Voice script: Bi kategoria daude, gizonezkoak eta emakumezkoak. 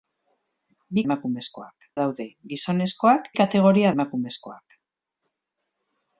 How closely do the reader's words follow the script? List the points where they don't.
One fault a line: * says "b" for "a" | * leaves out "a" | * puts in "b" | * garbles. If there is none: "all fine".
* says "emakumezkoak" for "kategoria"
* says "kategoria" for "eta"